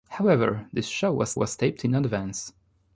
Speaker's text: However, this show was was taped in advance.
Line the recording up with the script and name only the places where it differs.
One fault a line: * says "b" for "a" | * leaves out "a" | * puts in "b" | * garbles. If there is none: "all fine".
all fine